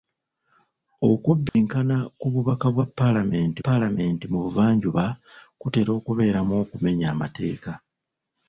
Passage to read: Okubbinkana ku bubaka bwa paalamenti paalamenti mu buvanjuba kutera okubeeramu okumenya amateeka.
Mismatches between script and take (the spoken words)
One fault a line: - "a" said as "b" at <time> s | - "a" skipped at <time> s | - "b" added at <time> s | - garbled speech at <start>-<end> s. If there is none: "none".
none